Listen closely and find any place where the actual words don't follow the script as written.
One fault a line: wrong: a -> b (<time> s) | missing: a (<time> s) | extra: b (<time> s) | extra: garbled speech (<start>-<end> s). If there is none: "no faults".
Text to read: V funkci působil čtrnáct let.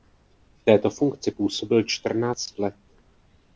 extra: této (0.6 s)